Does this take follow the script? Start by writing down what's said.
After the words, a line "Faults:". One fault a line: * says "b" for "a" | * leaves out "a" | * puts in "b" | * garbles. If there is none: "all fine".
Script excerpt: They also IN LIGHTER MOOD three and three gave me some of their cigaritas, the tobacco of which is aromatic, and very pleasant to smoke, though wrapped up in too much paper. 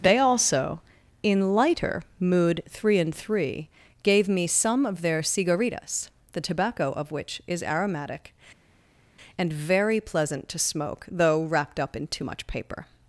They also IN LIGHTER MOOD three and three gave me some of their cigaritas, the tobacco of which is aromatic, and very pleasant to smoke, though wrapped up in too much paper.
Faults:
all fine